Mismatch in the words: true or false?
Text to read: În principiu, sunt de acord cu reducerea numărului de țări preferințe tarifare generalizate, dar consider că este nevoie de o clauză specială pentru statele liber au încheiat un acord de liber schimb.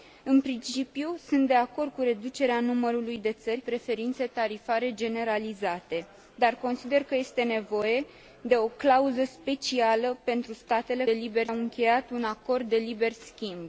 false